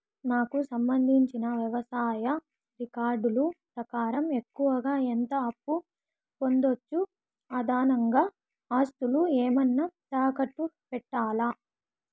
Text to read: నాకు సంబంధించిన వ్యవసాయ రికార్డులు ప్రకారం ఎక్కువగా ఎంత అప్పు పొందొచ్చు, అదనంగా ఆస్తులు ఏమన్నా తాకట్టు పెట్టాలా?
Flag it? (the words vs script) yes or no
no